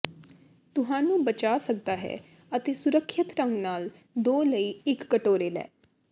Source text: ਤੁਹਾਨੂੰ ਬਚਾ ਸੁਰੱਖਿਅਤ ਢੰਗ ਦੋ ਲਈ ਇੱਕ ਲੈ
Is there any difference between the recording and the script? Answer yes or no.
yes